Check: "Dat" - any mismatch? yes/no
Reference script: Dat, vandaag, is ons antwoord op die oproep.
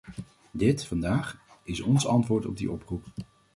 yes